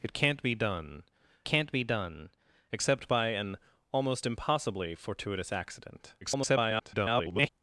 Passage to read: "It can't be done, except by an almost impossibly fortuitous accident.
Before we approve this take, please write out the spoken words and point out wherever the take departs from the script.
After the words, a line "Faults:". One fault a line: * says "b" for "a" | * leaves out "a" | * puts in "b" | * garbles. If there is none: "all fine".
"It can't be done can't be done, except by an almost impossibly fortuitous accident. [garbled]
Faults:
* puts in "can't be done"
* garbles